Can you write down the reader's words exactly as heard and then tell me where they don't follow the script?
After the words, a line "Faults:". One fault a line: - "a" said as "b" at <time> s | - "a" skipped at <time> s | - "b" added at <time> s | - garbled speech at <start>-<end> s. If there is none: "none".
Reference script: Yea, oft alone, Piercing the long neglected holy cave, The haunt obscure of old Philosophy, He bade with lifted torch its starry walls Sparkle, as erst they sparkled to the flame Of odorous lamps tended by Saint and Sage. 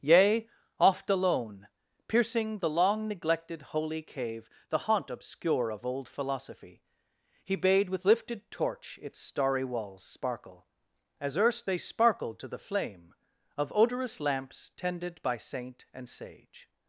Yea, oft alone, Piercing the long neglected holy cave, The haunt obscure of old Philosophy, He bade with lifted torch its starry walls Sparkle, as erst they sparkled to the flame Of odorous lamps tended by Saint and Sage.
Faults:
none